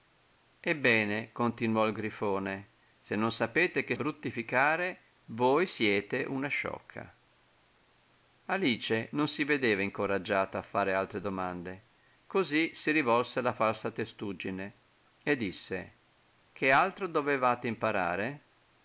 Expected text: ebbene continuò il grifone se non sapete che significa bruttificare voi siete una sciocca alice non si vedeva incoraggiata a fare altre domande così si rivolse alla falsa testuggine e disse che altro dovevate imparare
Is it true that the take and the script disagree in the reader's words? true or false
true